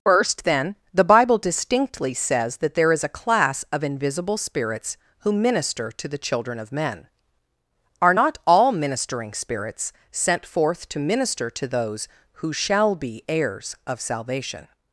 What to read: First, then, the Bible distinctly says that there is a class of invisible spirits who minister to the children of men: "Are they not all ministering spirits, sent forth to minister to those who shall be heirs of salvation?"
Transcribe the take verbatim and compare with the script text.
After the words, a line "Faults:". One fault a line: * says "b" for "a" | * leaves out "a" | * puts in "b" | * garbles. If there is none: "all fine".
First, then, the Bible distinctly says that there is a class of invisible spirits who minister to the children of men: "Are not all ministering spirits, sent forth to minister to those who shall be heirs of salvation?"
Faults:
* leaves out "they"